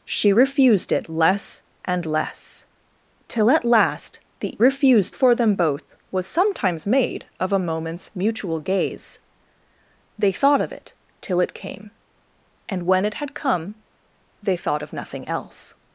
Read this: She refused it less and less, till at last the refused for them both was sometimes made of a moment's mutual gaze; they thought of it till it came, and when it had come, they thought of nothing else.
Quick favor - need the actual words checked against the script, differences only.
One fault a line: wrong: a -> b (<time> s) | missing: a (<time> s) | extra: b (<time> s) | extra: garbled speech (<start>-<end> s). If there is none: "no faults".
no faults